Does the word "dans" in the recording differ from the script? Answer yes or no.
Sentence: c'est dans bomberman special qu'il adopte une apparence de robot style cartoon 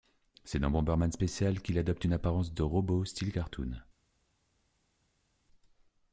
no